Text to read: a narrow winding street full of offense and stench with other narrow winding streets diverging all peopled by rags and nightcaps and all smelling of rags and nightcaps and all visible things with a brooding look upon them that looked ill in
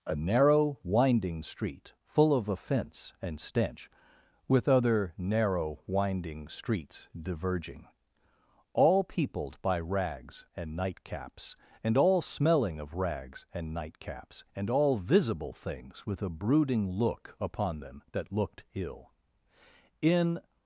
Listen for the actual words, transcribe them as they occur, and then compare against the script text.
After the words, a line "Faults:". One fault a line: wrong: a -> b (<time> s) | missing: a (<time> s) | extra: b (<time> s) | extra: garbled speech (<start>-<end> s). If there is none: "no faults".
a narrow winding street full of offense and stench with other narrow winding streets diverging all peopled by rags and nightcaps and all smelling of rags and nightcaps and all visible things with a brooding look upon them that looked ill in
Faults:
no faults